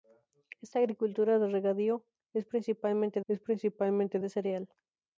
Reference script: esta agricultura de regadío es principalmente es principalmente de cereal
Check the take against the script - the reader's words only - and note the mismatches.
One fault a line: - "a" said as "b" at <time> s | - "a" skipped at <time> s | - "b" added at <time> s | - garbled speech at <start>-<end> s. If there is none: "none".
none